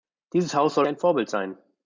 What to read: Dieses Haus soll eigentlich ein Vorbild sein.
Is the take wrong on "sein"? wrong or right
right